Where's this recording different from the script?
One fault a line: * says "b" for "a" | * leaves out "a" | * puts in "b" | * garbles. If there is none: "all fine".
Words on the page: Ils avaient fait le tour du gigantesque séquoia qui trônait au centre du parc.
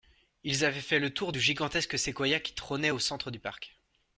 all fine